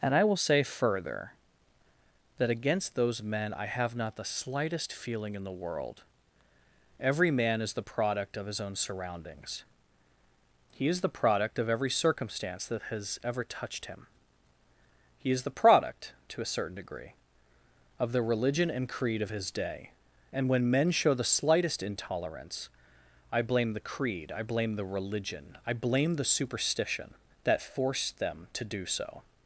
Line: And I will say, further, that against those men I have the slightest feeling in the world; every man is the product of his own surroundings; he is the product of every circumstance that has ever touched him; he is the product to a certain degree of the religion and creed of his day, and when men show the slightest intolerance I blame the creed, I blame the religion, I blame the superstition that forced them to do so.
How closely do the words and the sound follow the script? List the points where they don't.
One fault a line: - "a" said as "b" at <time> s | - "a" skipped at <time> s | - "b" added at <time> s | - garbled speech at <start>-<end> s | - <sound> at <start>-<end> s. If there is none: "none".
- "not" added at 4.0 s